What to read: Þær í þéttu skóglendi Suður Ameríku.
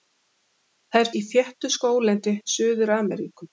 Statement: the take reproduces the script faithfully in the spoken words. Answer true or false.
true